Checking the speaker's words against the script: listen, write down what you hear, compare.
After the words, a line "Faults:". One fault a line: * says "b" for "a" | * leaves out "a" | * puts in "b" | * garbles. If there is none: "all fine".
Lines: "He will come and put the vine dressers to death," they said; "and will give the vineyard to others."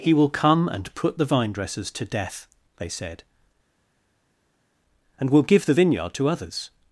"He will come and put the vine dressers to death," they said; "and will give the vineyard to others."
Faults:
all fine